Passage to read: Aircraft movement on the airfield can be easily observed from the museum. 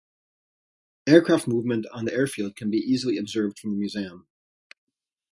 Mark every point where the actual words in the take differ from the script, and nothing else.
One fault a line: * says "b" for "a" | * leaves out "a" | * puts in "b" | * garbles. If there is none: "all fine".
all fine